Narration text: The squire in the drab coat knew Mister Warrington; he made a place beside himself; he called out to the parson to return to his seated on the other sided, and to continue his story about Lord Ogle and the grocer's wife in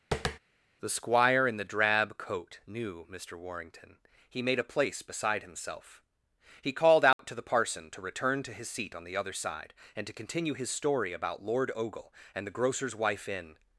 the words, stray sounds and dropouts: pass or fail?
fail